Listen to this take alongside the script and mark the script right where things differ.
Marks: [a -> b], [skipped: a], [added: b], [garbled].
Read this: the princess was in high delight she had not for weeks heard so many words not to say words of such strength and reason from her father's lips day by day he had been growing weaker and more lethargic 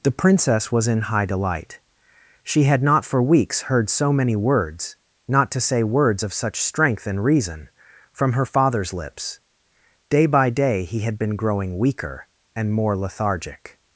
the princess was in high delight she had not for weeks heard so many words not to say words of such strength and reason from her father's lips day by day he had been growing weaker and more lethargic